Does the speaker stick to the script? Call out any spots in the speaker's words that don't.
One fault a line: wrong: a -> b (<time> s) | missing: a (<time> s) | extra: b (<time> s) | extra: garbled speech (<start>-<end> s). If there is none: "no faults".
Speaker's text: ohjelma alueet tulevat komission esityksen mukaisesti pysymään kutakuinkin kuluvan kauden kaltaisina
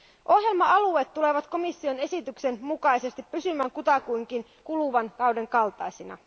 no faults